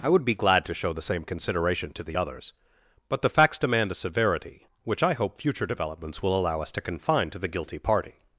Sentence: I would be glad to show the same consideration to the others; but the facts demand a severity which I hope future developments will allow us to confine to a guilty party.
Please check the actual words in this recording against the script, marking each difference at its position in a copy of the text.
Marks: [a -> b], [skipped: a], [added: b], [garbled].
I would be glad to show the same consideration to the others; but the facts demand a severity which I hope future developments will allow us to confine to [a -> the] guilty party.